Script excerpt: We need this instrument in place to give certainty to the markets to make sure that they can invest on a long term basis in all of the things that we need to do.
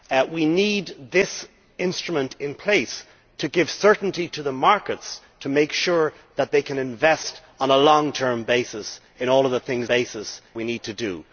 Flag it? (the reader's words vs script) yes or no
yes